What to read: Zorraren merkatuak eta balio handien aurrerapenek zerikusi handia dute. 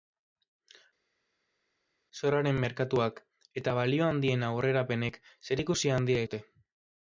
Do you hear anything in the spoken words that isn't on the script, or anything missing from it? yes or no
no